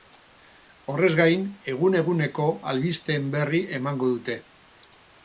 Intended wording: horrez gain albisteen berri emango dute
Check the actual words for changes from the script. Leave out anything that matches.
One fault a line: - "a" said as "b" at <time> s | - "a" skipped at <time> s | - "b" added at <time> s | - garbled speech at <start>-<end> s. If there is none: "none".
- "egun eguneko" added at 1.7 s